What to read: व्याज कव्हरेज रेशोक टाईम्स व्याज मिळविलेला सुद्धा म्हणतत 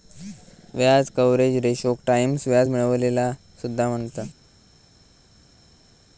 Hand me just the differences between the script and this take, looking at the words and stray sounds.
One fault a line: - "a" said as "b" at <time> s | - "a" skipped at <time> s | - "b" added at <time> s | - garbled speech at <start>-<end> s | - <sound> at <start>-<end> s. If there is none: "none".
none